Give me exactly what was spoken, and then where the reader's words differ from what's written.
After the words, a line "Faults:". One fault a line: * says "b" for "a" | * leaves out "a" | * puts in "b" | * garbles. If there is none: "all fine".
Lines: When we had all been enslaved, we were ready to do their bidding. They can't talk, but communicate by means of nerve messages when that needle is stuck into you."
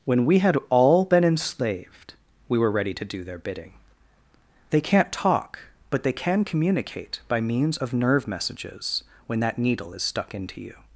When we had all been enslaved, we were ready to do their bidding. They can't talk, but they can communicate by means of nerve messages when that needle is stuck into you."
Faults:
* puts in "they can"